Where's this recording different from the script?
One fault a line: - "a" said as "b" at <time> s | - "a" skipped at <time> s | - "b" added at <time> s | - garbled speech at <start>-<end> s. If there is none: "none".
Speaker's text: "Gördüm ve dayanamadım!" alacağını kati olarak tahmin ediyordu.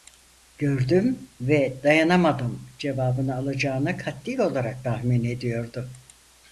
- "cevabını" added at 2.8 s